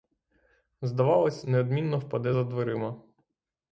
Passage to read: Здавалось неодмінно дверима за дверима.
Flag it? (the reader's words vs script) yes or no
yes